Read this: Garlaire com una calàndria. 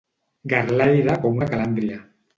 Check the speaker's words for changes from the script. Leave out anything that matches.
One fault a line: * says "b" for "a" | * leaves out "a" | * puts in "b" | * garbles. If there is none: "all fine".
all fine